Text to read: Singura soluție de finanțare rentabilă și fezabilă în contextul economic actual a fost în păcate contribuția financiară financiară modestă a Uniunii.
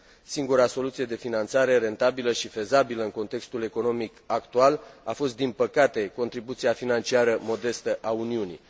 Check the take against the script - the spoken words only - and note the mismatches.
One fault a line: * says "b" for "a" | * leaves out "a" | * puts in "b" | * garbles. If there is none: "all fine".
* says "din" for "în"
* leaves out "financiară"